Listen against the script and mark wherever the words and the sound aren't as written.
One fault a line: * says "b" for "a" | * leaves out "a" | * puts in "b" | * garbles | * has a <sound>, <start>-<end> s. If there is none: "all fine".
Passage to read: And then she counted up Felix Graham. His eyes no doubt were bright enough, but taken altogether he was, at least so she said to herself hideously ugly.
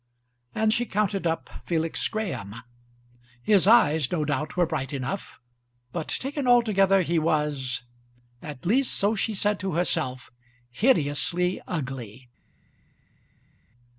* leaves out "then"